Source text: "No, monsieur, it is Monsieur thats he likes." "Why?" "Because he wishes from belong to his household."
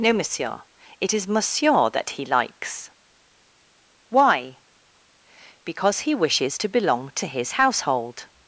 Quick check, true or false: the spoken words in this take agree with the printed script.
false